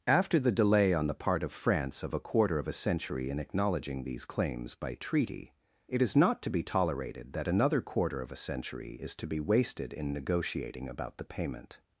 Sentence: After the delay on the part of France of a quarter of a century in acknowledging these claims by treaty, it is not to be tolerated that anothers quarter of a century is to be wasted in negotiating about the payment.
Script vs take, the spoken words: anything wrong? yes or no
yes